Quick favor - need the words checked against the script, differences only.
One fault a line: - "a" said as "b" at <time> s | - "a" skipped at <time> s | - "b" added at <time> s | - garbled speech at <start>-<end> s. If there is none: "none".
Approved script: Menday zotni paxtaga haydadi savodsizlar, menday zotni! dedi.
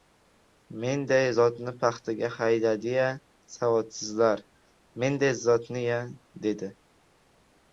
- "ya" added at 3.0 s
- "ya" added at 5.9 s